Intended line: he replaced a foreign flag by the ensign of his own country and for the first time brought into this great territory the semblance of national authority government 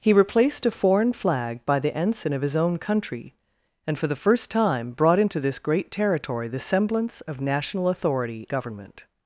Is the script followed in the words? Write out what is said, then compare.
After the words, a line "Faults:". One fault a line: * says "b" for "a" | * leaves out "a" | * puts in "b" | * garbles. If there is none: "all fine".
he replaced a foreign flag by the ensign of his own country and for the first time brought into this great territory the semblance of national authority government
Faults:
all fine